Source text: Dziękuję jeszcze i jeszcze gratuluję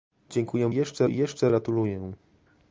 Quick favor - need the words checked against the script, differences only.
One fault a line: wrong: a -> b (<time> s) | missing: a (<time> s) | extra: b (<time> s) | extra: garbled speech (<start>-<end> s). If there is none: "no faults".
no faults